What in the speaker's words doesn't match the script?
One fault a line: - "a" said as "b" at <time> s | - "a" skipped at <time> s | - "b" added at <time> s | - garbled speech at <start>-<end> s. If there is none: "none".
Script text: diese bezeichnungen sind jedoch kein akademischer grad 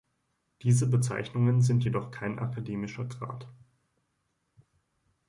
none